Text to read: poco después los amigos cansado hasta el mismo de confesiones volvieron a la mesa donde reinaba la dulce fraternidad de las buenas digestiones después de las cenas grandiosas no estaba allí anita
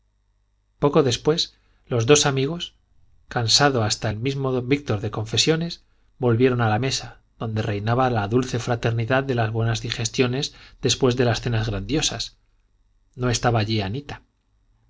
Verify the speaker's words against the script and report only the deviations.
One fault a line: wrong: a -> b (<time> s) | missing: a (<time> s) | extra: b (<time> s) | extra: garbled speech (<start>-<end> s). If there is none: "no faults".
extra: dos (2.1 s)
extra: don víctor (4.5 s)